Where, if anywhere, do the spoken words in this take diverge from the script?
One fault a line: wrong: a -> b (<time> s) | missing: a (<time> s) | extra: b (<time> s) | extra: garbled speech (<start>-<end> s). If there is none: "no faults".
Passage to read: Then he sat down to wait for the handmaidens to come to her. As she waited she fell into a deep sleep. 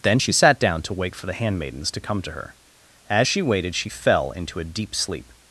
wrong: he -> she (0.2 s)